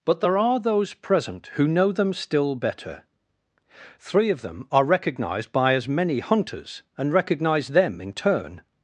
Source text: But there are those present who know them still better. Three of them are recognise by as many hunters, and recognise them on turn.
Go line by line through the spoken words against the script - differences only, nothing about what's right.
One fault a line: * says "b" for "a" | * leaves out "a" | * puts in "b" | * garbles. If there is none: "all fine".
* says "recognised" for "recognise"
* says "in" for "on"